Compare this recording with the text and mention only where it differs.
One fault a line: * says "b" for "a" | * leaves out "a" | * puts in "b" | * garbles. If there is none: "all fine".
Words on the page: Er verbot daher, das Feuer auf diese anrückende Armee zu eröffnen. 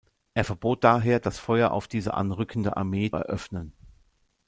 * leaves out "zu"